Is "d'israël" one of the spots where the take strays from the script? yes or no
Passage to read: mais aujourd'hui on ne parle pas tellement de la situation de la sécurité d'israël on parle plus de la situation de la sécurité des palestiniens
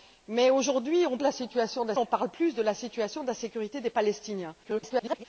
yes